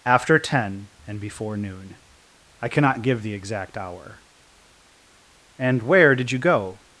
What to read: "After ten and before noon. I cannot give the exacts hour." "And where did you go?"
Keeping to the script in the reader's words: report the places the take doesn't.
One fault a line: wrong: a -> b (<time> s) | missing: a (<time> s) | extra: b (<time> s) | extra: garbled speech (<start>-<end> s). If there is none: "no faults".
wrong: exacts -> exact (3.3 s)